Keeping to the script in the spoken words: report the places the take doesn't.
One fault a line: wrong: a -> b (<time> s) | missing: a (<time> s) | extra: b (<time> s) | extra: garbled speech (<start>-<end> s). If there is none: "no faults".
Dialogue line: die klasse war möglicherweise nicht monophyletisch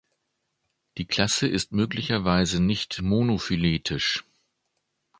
wrong: war -> ist (1.5 s)